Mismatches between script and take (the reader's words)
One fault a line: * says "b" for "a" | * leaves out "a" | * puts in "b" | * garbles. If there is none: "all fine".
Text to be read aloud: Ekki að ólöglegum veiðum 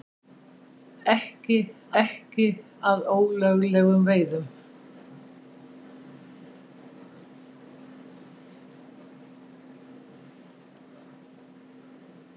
* puts in "ekki"